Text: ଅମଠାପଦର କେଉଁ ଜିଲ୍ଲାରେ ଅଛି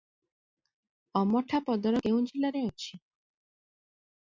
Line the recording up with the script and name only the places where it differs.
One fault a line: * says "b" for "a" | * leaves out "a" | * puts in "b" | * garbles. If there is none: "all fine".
all fine